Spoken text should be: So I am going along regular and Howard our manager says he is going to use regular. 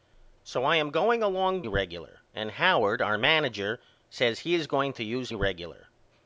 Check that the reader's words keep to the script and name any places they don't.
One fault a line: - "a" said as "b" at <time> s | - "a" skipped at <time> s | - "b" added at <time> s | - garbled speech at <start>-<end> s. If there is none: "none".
none